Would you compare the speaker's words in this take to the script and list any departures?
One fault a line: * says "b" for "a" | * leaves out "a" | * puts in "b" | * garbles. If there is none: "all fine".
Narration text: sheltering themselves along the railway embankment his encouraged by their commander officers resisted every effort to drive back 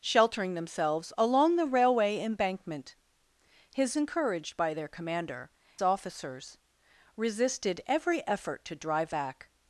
all fine